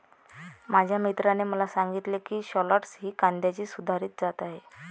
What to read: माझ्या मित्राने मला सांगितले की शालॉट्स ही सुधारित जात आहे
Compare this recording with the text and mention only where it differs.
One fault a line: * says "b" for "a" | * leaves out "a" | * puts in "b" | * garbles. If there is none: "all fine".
* puts in "कांद्याची"